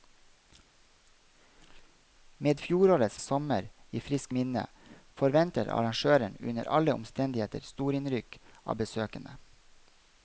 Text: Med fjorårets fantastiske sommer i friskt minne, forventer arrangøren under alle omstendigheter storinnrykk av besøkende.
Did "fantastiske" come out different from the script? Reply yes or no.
yes